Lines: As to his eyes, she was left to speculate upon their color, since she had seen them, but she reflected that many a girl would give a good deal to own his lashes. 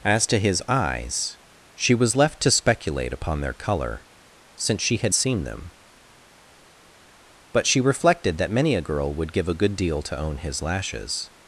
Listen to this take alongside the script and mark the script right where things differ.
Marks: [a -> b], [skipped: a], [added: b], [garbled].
As to his eyes, she was left to speculate upon their color, since she had seen them, but she reflected that many a girl would give a good deal to own his lashes.